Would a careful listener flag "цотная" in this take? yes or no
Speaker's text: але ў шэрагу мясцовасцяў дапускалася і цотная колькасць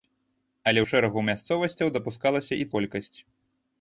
yes